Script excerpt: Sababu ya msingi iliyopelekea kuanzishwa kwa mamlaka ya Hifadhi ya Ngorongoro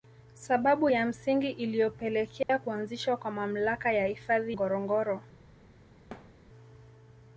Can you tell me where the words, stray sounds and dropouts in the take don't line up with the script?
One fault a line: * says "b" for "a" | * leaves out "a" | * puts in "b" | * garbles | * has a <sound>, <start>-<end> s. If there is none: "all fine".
* has a dropout, 2.4-2.5 s
* leaves out "ya"
* has a thud, 6.1-6.4 s